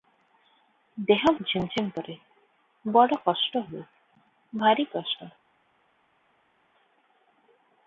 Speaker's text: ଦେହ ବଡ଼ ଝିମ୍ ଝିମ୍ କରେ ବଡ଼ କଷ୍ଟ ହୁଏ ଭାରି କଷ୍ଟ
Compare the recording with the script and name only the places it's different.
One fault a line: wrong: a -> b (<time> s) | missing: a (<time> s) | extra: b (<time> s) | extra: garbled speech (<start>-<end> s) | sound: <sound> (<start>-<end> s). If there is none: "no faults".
missing: ବଡ଼ (1.2 s)